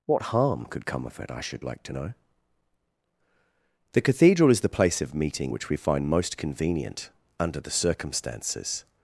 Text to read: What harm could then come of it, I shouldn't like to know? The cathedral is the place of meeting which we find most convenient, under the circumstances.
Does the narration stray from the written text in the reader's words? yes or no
yes